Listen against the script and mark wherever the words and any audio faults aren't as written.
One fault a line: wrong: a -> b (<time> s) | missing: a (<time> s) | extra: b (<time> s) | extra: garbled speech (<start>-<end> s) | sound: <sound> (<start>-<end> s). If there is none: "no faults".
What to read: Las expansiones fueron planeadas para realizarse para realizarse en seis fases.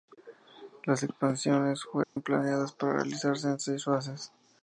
sound: dropout (2.0-2.2 s)
missing: para realizarse (3.5 s)